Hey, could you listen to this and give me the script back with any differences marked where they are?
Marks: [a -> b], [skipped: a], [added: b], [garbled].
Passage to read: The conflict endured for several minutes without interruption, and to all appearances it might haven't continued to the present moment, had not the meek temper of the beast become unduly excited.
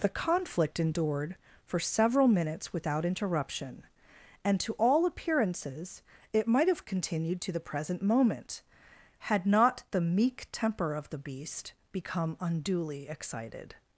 The conflict endured for several minutes without interruption, and to all appearances it might [haven't -> have] continued to the present moment, had not the meek temper of the beast become unduly excited.